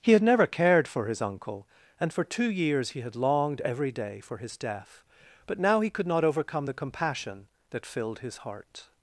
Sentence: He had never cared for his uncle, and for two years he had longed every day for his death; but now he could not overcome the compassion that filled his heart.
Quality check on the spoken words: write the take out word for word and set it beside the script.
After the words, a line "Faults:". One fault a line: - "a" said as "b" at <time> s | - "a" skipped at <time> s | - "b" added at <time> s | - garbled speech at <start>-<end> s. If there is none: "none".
He had never cared for his uncle, and for two years he had longed every day for his death; but now he could not overcome the compassion that filled his heart.
Faults:
none